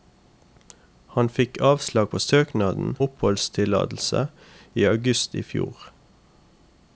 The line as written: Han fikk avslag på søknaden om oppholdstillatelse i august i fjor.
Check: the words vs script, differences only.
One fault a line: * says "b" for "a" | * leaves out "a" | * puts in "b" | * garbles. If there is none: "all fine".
* leaves out "om"